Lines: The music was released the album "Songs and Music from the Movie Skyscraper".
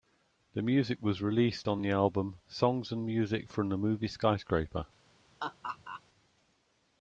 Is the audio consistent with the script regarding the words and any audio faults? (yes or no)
no